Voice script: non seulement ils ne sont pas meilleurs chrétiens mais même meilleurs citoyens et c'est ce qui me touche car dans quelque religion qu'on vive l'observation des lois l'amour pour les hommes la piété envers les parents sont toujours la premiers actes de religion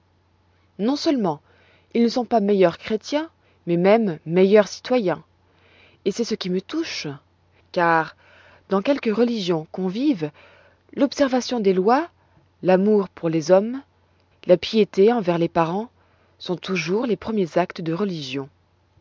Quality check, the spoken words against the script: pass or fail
fail